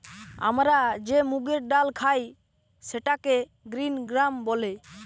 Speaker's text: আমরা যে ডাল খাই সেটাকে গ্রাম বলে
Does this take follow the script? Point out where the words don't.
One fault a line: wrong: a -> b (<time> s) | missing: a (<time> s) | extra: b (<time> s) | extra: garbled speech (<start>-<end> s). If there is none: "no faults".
extra: মুগের (1.3 s)
extra: গ্রিন (3.7 s)